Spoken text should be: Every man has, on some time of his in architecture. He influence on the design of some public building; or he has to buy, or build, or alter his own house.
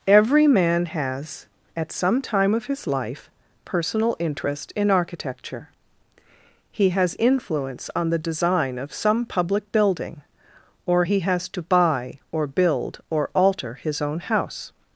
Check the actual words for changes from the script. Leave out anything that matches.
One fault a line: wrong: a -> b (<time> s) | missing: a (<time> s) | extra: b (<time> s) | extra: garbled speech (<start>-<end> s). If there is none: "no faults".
wrong: on -> at (1.7 s)
extra: life personal interest (2.9 s)
extra: has (6.9 s)